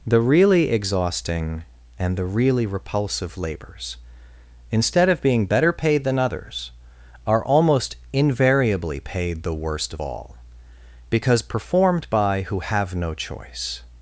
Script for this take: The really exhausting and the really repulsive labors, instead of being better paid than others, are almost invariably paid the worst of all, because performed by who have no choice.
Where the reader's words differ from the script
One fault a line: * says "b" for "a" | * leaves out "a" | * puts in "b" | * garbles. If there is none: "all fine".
all fine